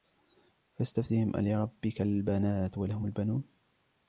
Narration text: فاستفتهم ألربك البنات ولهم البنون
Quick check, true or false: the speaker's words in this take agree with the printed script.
true